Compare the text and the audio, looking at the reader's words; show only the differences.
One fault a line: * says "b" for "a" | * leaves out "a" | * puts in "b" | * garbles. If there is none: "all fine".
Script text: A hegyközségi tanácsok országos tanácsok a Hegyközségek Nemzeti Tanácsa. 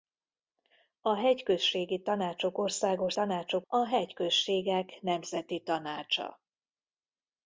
all fine